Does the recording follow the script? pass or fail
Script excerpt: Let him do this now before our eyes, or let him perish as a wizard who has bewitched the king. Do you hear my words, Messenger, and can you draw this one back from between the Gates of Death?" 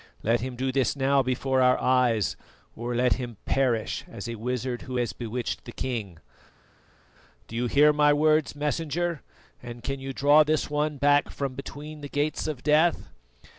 pass